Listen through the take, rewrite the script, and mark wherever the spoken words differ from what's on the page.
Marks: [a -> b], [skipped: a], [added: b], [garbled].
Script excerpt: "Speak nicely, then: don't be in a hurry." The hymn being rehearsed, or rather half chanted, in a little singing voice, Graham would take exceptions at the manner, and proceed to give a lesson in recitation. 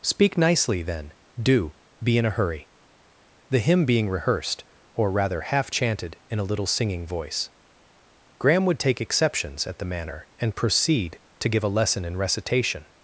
"Speak nicely, then: [don't -> do] be in a hurry." The hymn being rehearsed, or rather half chanted, in a little singing voice, Graham would take exceptions at the manner, and proceed to give a lesson in recitation.